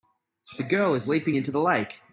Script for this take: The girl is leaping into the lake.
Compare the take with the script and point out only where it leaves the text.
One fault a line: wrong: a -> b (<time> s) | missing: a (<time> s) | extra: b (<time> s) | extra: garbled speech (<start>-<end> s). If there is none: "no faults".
no faults